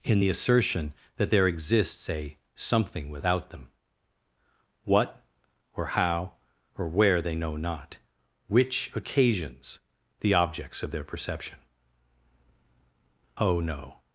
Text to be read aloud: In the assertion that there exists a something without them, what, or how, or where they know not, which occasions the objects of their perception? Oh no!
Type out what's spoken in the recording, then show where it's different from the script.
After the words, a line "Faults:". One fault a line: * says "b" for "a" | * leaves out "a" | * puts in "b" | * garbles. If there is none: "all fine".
In the assertion that there exists a something without them, what, or how, or where they know not, which occasions the objects of their perception? Oh no!
Faults:
all fine